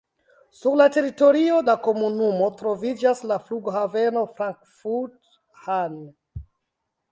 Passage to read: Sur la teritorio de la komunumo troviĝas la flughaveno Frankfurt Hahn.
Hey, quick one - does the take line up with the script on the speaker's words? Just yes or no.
no